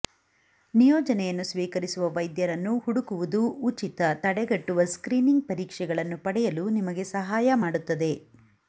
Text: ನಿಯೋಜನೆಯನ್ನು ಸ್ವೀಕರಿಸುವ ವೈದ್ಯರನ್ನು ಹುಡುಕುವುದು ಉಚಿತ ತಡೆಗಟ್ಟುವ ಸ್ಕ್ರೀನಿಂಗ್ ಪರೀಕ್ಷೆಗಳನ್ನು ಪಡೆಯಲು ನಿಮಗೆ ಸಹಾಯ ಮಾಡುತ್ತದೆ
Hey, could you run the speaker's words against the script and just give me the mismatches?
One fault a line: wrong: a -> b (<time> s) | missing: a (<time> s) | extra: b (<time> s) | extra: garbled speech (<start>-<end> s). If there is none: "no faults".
no faults